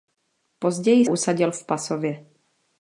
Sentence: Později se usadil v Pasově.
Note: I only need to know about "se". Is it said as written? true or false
false